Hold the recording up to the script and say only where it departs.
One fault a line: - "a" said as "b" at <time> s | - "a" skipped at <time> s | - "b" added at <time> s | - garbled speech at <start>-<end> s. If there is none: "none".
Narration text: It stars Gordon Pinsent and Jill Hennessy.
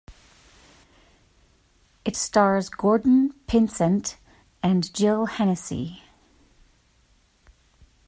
none